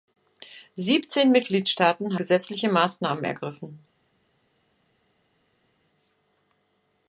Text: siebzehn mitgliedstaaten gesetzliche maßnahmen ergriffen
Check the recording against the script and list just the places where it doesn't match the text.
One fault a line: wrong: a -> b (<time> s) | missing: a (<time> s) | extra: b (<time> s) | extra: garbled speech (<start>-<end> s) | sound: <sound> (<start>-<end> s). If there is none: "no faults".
no faults